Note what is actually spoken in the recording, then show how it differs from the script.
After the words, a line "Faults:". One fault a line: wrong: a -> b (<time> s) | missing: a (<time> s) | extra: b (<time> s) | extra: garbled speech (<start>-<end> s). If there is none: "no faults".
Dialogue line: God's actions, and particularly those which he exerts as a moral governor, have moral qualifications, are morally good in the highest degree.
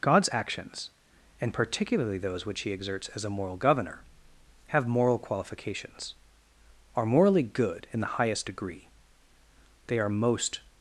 God's actions, and particularly those which he exerts as a moral governor, have moral qualifications, are morally good in the highest degree. They are most
Faults:
extra: They are most (9.9 s)